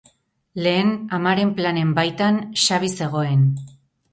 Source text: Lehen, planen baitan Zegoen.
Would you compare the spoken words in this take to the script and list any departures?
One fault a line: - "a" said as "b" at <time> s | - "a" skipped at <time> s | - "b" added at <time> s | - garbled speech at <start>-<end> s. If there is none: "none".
- "amaren" added at 1.2 s
- "Xabi" added at 2.6 s